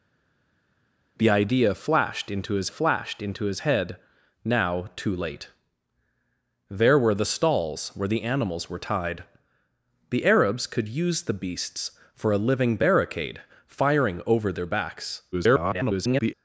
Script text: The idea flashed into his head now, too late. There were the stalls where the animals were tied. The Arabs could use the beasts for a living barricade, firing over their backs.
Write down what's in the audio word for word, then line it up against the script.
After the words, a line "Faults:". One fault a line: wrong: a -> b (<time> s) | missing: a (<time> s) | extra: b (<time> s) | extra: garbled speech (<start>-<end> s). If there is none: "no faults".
The idea flashed into his flashed into his head now, too late. There were the stalls where the animals were tied. The Arabs could use the beasts for a living barricade, firing over their backs. [garbled]
Faults:
extra: flashed into his (2.7 s)
extra: garbled speech (15.3-16.3 s)